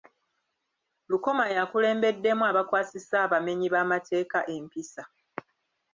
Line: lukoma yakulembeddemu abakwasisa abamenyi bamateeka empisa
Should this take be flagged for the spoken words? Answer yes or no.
no